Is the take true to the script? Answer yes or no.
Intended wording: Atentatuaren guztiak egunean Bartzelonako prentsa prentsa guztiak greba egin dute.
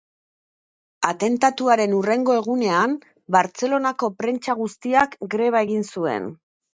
no